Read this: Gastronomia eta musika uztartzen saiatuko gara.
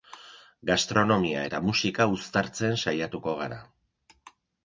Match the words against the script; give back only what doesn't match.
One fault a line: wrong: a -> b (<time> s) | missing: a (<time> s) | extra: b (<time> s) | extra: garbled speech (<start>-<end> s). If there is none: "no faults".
no faults